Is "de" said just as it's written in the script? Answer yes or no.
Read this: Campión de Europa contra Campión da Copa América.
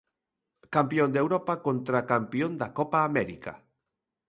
yes